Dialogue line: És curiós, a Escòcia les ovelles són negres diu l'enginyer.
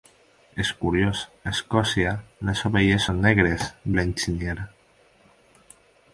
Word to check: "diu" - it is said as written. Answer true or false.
false